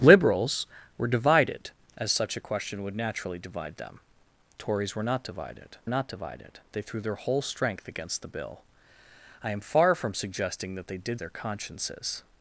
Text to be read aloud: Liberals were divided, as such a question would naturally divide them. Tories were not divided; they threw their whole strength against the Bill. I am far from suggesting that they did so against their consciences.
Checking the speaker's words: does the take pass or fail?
fail